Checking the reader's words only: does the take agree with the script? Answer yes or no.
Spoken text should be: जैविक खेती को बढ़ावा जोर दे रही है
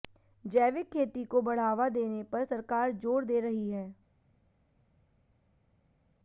no